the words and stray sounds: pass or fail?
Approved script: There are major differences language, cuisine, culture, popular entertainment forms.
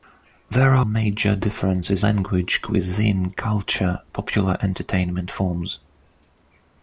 pass